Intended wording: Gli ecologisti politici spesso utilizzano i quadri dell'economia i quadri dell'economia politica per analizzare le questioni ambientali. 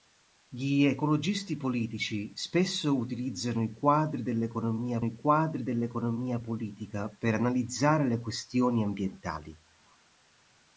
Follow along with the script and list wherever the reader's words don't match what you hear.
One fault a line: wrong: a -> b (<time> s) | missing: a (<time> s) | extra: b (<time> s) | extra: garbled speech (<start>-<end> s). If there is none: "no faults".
no faults